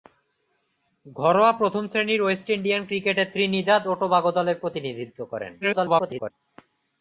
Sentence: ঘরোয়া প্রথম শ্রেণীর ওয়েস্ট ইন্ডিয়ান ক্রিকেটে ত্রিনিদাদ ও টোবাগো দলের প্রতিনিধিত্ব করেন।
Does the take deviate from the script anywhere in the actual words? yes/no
yes